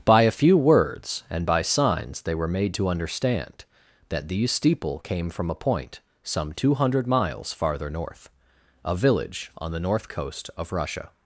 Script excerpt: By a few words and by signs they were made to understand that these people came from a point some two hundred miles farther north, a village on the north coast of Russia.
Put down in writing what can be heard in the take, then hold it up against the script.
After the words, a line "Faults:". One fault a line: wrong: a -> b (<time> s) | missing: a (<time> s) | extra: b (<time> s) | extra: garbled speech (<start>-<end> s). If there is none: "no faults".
By a few words and by signs they were made to understand that these steeple came from a point some two hundred miles farther north, a village on the north coast of Russia.
Faults:
wrong: people -> steeple (4.5 s)